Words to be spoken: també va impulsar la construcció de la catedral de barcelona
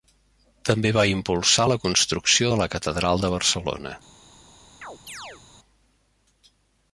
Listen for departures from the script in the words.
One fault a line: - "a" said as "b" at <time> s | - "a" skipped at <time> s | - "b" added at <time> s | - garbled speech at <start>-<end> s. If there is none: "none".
none